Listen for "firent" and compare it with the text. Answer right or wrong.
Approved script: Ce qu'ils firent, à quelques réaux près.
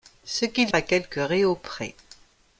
wrong